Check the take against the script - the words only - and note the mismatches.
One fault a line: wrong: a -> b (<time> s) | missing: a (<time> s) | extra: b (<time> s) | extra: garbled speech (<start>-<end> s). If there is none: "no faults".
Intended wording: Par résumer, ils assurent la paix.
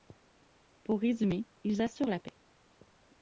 wrong: Par -> Pour (0.8 s)